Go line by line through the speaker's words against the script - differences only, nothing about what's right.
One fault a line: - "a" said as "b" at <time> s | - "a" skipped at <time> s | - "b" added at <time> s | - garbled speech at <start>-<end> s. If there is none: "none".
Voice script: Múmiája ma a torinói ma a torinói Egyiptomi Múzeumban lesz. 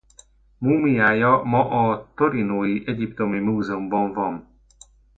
- "ma a torinói" skipped at 2.8 s
- "lesz" said as "van" at 4.1 s